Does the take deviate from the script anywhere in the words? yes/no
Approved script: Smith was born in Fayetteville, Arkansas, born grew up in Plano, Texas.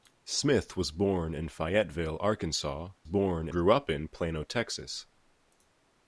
no